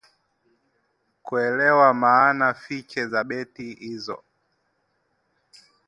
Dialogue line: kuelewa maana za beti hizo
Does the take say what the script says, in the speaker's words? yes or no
no